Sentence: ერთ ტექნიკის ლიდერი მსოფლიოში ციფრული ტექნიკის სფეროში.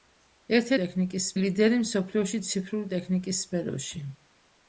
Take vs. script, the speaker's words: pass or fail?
pass